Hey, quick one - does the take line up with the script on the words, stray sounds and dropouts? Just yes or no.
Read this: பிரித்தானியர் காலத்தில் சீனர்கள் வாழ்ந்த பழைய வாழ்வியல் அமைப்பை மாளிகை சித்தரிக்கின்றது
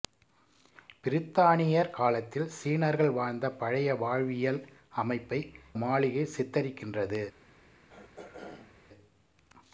no